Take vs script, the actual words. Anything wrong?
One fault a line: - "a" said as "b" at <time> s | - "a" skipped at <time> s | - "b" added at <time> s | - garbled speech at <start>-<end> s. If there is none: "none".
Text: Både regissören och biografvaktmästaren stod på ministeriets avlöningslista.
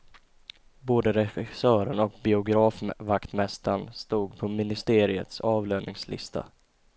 none